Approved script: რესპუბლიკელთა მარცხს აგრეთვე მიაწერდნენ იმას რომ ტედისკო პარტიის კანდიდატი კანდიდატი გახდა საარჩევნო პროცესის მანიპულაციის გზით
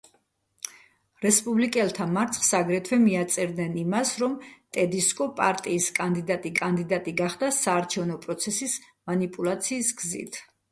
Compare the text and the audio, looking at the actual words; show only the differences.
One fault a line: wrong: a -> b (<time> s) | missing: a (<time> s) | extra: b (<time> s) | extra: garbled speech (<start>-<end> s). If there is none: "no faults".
no faults